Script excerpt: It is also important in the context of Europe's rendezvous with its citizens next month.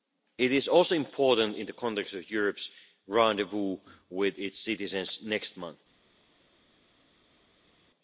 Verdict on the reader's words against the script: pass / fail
pass